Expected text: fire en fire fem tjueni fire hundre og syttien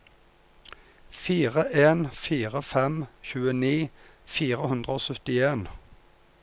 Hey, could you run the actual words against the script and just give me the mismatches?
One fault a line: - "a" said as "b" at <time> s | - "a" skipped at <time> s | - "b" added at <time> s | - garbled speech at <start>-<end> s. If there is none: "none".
none